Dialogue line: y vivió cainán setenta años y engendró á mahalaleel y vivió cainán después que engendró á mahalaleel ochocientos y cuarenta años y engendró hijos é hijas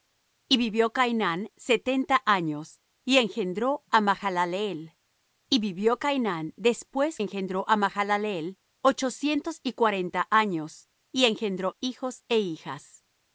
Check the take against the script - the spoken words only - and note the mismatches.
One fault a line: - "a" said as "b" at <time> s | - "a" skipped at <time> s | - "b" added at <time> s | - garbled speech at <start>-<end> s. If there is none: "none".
- "que" skipped at 7.2 s